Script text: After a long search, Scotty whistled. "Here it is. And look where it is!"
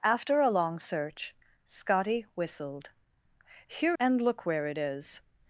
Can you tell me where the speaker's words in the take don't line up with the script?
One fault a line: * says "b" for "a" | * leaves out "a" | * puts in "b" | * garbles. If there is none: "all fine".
* leaves out "it is"